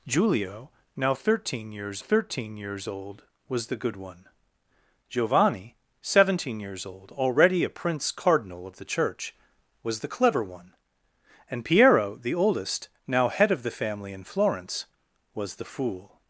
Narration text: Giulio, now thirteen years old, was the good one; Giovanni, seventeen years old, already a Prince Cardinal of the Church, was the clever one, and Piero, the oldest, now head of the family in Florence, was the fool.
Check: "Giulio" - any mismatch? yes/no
no